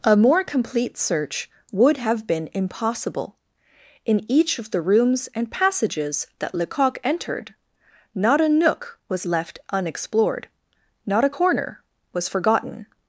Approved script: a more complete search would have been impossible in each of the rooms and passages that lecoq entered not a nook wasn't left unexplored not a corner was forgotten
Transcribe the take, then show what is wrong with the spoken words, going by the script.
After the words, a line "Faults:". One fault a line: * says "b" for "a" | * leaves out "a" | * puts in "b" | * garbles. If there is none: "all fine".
a more complete search would have been impossible in each of the rooms and passages that lecoq entered not a nook was left unexplored not a corner was forgotten
Faults:
* says "was" for "wasn't"